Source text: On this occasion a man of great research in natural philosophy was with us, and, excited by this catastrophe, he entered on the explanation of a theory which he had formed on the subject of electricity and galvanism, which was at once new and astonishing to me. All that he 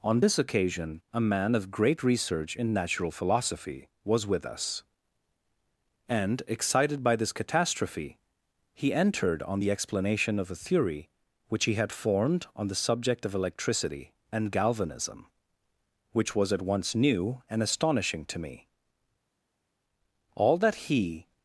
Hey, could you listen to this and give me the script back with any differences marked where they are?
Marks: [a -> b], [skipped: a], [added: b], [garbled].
On this occasion a man of great research in natural philosophy was with us, and, excited by this catastrophe, he entered on the explanation of a theory which he had formed on the subject of electricity and galvanism, which was at once new and astonishing to me. All that he